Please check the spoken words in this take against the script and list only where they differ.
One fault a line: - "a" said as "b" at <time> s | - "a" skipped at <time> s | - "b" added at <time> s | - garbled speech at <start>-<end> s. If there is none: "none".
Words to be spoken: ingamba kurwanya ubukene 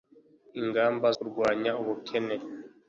none